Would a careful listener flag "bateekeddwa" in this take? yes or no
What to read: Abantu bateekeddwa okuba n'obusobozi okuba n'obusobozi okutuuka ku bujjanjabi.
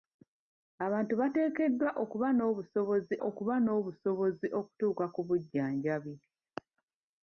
no